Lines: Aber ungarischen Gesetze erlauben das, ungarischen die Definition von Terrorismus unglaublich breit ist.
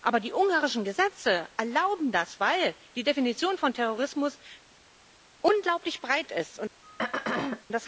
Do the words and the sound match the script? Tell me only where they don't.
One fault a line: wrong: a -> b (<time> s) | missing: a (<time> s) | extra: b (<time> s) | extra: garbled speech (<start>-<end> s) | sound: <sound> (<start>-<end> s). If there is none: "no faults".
extra: die (0.2 s)
wrong: ungarischen -> weil (2.4 s)
sound: throat clearing (6.8-7.6 s)